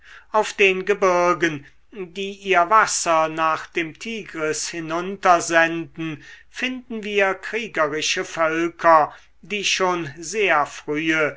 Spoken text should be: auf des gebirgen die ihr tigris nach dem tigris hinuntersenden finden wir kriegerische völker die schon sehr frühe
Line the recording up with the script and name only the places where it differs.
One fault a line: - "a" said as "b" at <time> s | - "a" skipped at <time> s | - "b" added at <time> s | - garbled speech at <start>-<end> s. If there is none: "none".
- "des" said as "den" at 0.5 s
- "tigris" said as "wasser" at 2.7 s